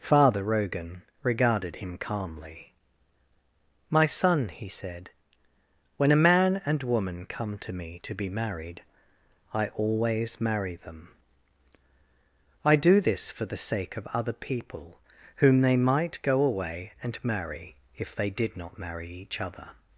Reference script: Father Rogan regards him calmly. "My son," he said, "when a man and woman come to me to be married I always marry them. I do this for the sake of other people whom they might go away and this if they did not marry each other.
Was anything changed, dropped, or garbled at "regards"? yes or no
yes